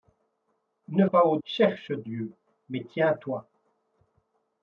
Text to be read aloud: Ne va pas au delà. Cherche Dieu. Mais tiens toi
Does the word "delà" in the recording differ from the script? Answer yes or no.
yes